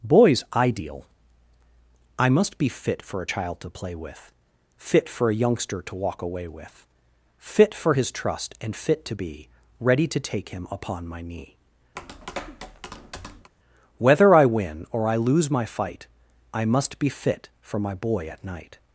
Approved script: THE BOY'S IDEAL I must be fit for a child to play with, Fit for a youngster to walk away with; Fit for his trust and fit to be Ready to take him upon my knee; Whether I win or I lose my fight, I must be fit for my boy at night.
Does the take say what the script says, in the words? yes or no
no